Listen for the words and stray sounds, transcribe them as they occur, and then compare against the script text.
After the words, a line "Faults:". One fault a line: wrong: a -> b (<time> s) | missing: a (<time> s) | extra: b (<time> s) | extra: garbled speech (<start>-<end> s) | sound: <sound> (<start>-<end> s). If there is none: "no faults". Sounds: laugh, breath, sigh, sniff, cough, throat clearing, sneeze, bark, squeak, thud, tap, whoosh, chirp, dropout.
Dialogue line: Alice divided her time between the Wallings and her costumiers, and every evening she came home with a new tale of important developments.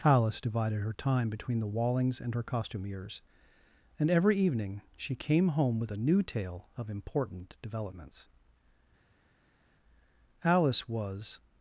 Alice divided her time between the Wallings and her costumiers, and every evening she came home with a new tale of important developments. Alice was
Faults:
extra: Alice was (10.4 s)